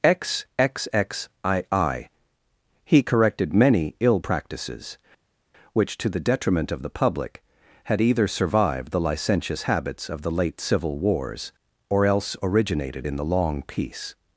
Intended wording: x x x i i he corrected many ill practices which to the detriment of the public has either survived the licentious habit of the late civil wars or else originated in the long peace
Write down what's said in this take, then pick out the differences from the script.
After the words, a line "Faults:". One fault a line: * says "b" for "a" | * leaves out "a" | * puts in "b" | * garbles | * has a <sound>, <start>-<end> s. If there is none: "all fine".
x x x i i he corrected many ill practices which to the detriment of the public had either survived the licentious habits of the late civil wars or else originated in the long peace
Faults:
* says "had" for "has"
* says "habits" for "habit"